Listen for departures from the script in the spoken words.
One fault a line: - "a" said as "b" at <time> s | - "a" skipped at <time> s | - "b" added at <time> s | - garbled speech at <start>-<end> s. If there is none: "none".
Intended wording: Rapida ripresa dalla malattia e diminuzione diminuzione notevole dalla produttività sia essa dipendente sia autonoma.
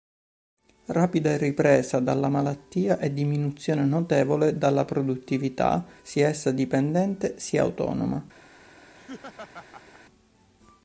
- "diminuzione" skipped at 3.9 s